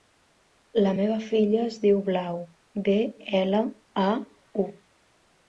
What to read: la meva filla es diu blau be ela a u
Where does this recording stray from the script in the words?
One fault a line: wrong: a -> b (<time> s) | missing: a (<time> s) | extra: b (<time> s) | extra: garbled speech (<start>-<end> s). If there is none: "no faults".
no faults